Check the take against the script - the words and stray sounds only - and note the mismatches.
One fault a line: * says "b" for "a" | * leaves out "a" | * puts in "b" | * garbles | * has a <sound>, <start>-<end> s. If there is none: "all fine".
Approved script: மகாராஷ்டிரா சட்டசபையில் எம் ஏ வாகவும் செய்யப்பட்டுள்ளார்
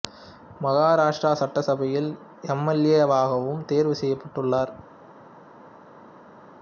* puts in "எல்"
* puts in "தேர்வு"